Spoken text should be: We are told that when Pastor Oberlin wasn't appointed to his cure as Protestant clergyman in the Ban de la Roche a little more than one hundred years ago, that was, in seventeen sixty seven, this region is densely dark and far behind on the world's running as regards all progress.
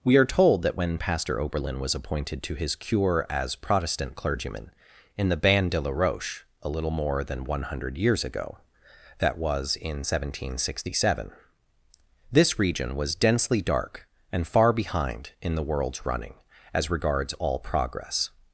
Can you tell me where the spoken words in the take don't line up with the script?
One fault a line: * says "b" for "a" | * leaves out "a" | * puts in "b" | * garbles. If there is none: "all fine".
* says "was" for "wasn't"
* says "was" for "is"
* says "in" for "on"